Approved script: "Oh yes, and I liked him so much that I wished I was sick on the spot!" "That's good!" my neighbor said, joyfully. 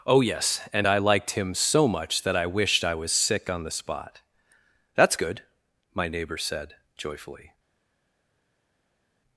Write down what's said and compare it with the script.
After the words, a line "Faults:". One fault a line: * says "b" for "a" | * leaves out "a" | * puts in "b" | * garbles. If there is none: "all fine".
"Oh yes, and I liked him so much that I wished I was sick on the spot!" "That's good!" my neighbor said, joyfully.
Faults:
all fine